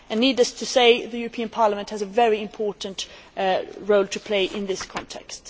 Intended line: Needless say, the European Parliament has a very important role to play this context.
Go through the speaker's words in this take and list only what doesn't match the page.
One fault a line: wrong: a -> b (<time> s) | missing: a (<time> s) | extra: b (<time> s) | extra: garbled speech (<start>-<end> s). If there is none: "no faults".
extra: to (0.5 s)
extra: in (4.5 s)